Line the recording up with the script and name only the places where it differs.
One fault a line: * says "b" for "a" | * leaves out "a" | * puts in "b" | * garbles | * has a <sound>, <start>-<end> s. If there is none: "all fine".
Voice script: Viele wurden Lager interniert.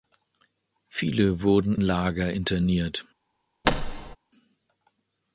* has a thud, 3.6-4.2 s